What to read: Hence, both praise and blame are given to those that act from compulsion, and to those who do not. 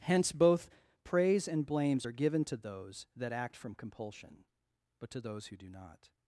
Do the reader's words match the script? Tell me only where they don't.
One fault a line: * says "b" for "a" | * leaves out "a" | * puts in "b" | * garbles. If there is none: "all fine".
* says "blames" for "blame"
* says "but" for "and"